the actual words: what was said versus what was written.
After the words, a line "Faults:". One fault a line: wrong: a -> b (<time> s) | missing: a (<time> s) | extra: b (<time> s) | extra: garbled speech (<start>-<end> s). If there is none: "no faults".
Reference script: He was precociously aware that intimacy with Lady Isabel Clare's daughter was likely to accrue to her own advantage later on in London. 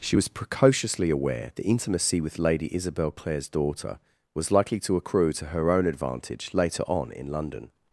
She was precociously aware that intimacy with Lady Isabel Clare's daughter was likely to accrue to her own advantage later on in London.
Faults:
wrong: He -> She (0.0 s)